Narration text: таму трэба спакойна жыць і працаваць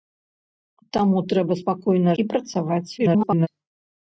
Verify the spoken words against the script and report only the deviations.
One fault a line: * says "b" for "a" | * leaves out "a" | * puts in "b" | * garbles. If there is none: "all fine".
* leaves out "жыць"
* garbles